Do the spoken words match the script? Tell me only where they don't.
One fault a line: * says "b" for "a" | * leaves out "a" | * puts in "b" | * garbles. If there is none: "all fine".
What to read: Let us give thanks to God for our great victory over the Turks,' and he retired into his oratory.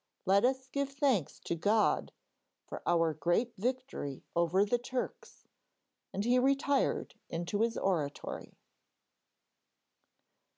all fine